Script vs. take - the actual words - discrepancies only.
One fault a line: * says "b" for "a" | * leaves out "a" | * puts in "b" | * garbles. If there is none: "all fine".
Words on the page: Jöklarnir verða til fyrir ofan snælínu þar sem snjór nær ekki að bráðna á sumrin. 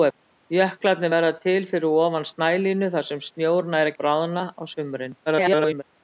* leaves out "ekki"
* garbles